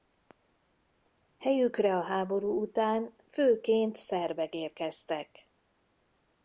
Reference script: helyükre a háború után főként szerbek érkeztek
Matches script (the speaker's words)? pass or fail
pass